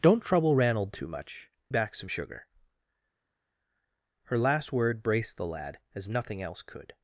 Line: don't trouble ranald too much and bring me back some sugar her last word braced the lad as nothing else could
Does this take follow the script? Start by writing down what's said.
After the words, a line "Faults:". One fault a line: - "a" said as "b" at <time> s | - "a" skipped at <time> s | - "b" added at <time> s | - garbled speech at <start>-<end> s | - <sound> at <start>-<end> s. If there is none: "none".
don't trouble ranald too much back some sugar her last word braced the lad as nothing else could
Faults:
- "and bring me" skipped at 1.5 s